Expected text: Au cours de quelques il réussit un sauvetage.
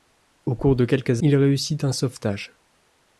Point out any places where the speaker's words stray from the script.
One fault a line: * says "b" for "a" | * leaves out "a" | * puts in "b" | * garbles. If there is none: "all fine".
all fine